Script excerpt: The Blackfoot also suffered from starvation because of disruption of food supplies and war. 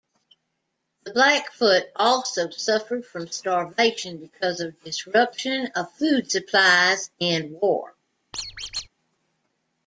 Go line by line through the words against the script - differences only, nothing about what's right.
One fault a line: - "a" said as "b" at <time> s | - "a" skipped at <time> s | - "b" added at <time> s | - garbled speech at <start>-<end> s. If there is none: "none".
none